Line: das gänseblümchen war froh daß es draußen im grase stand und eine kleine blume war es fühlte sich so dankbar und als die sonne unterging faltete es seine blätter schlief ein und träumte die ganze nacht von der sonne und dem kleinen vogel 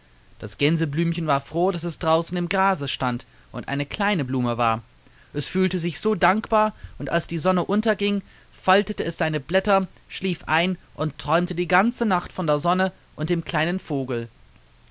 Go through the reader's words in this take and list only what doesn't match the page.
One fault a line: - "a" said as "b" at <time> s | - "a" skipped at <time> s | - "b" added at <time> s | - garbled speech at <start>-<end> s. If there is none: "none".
none